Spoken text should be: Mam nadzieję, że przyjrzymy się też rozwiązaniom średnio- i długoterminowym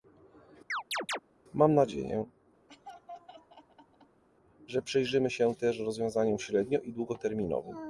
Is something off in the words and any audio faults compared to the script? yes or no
yes